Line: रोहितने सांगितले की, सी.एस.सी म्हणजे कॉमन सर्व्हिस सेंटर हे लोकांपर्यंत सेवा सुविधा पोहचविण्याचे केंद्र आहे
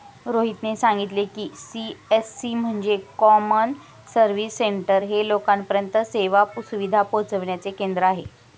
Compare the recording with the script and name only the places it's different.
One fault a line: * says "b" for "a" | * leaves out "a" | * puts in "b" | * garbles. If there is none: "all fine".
all fine